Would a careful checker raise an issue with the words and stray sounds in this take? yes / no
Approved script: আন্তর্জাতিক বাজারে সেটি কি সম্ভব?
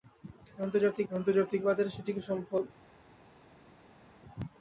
yes